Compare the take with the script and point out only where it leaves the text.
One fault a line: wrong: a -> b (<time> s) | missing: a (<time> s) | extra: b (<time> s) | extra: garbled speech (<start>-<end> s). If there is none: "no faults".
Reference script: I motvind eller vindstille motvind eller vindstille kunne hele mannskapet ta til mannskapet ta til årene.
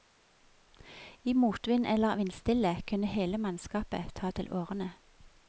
missing: motvind eller vindstille (2.8 s)
missing: mannskapet ta til (4.5 s)